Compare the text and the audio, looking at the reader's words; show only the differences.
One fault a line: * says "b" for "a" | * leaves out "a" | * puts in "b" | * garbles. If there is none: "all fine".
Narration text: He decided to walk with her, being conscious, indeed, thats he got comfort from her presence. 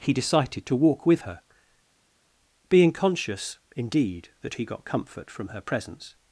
* says "that" for "thats"